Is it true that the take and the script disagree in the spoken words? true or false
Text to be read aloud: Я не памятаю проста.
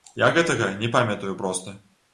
true